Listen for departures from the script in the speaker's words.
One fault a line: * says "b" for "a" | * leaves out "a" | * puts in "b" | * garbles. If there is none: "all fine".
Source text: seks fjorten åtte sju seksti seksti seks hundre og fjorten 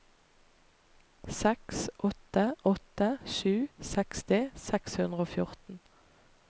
* says "åtte" for "fjorten"
* leaves out "seksti"